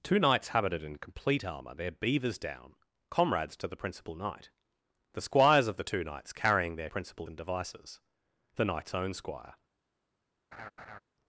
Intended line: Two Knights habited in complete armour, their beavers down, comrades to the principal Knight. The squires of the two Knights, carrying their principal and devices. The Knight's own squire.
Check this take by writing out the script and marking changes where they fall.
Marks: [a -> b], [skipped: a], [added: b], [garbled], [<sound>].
Two Knights habited in complete armour, their beavers down, comrades to the principal Knight. The squires of the two Knights, carrying their principal and devices. The Knight's own squire. [laugh]